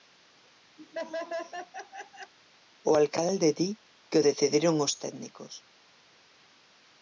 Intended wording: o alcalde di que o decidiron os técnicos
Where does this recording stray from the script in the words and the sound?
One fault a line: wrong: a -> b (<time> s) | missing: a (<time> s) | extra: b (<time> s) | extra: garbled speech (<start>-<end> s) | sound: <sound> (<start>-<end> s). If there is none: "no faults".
sound: laugh (0.8-2.3 s)